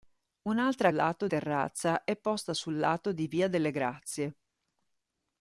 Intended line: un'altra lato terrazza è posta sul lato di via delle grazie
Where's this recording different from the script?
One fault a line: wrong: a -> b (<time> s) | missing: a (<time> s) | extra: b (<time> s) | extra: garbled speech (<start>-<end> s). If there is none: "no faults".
no faults